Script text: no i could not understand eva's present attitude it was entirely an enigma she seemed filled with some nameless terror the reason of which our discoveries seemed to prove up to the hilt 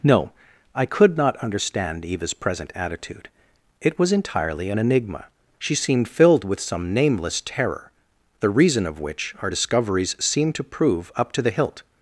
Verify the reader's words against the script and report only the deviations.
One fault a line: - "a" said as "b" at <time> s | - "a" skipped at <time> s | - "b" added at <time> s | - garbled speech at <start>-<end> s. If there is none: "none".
none